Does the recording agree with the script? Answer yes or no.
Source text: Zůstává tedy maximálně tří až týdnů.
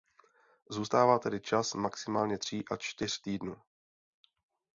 no